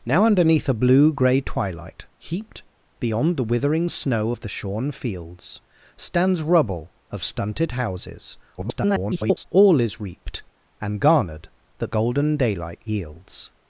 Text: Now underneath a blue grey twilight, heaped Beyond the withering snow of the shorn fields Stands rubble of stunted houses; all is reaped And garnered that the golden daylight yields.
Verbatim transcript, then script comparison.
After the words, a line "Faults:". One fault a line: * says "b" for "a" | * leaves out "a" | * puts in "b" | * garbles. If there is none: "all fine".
Now underneath a blue grey twilight, heaped Beyond the withering snow of the shorn fields Stands rubble of stunted houses; [garbled] all is reaped And garnered that golden daylight yields.
Faults:
* garbles
* leaves out "the"